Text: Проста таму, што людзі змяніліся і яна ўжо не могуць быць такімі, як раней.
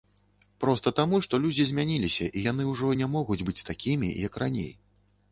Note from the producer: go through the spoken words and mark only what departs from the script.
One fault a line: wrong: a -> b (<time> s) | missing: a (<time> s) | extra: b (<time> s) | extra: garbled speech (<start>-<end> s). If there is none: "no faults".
wrong: яна -> яны (2.5 s)